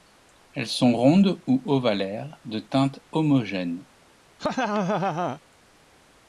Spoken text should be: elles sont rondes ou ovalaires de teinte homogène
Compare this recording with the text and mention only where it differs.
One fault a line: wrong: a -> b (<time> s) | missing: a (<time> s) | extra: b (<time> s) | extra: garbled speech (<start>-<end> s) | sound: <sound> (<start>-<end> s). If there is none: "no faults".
sound: laugh (4.4-5.4 s)